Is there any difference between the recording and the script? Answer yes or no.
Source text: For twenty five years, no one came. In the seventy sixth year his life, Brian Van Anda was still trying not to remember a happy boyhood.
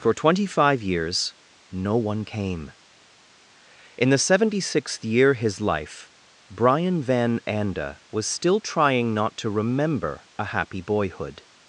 no